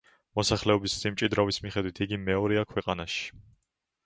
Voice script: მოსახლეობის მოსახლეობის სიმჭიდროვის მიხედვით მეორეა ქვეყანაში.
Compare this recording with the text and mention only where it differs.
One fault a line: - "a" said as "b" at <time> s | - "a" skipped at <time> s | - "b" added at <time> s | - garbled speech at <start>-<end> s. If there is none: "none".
- "მოსახლეობის" skipped at 0.9 s
- "იგი" added at 2.1 s